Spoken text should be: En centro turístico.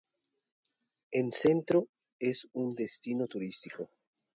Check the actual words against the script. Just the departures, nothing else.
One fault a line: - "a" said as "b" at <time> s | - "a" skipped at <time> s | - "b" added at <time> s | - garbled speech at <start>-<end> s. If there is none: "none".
- "es un destino" added at 2.2 s